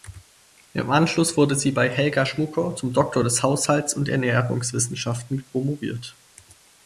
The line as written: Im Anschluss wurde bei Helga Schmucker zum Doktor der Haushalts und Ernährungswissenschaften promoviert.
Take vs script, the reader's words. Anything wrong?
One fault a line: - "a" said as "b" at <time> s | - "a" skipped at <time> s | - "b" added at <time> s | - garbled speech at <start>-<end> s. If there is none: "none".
- "sie" added at 1.5 s